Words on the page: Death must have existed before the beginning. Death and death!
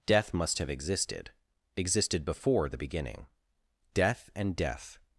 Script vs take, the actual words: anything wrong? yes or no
yes